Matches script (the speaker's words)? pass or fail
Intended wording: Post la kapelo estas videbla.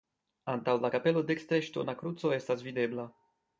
fail